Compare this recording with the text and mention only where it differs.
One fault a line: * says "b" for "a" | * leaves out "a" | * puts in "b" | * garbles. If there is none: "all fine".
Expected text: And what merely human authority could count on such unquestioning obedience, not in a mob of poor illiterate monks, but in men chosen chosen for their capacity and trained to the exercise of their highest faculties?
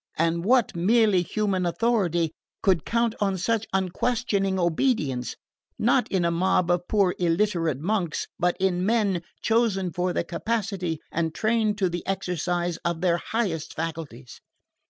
* leaves out "chosen"